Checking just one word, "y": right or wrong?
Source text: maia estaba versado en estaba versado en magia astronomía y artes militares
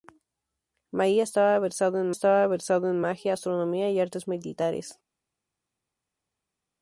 right